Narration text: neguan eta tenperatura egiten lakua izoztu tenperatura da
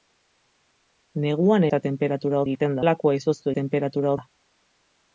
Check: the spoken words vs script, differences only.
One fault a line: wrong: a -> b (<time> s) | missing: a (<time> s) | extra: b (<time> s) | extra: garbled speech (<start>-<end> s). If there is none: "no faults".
no faults